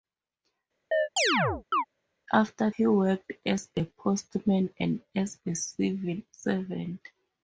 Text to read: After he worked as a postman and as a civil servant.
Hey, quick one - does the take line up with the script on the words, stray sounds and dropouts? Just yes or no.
no